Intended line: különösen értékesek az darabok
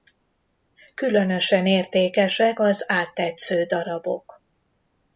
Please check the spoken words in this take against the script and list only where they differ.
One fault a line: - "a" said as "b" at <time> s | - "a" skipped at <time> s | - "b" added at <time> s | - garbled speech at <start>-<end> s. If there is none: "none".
- "áttetsző" added at 2.9 s